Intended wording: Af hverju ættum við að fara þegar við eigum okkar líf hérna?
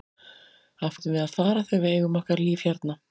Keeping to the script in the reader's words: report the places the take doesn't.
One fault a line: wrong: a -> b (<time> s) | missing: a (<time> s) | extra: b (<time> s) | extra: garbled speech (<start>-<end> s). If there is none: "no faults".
missing: hverju (1.0 s)